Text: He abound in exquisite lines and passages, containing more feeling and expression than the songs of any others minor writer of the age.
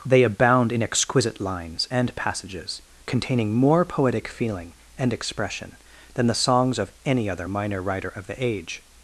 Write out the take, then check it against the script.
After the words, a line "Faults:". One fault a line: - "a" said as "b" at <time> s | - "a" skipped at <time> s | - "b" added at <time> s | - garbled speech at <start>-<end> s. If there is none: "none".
They abound in exquisite lines and passages, containing more poetic feeling and expression than the songs of any other minor writer of the age.
Faults:
- "He" said as "They" at 0.1 s
- "poetic" added at 3.9 s
- "others" said as "other" at 7.3 s